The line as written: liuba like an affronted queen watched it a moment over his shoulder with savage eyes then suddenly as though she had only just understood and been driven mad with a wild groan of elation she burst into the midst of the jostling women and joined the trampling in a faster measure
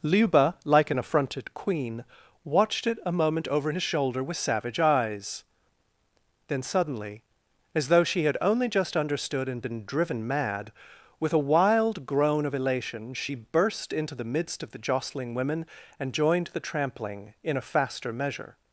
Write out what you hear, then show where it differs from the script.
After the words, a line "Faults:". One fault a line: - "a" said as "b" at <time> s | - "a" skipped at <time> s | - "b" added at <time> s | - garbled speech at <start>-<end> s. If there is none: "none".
liuba like an affronted queen watched it a moment over his shoulder with savage eyes then suddenly as though she had only just understood and been driven mad with a wild groan of elation she burst into the midst of the jostling women and joined the trampling in a faster measure
Faults:
none